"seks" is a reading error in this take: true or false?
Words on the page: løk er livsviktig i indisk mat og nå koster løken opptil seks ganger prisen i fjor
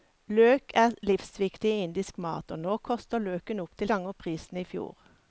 true